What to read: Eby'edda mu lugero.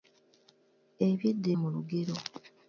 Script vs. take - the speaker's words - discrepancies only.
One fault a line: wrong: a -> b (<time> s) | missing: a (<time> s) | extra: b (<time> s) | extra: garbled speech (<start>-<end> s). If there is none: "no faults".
no faults